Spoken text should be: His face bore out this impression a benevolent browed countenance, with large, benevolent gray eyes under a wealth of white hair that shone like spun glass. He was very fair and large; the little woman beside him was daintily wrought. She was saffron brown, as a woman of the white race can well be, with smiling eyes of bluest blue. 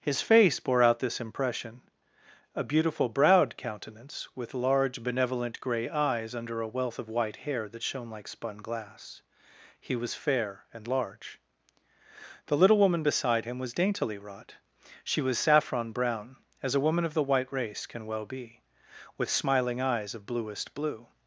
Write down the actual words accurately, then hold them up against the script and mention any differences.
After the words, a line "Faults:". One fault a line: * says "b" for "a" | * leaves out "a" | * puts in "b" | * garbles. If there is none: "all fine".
His face bore out this impression a beautiful browed countenance, with large, benevolent gray eyes under a wealth of white hair that shone like spun glass. He was fair and large; the little woman beside him was daintily wrought. She was saffron brown, as a woman of the white race can well be, with smiling eyes of bluest blue.
Faults:
* says "beautiful" for "benevolent"
* leaves out "very"